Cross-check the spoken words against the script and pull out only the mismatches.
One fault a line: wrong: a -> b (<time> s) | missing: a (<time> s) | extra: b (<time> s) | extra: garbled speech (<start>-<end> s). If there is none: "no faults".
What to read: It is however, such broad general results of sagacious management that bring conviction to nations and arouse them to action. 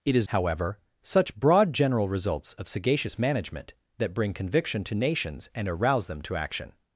no faults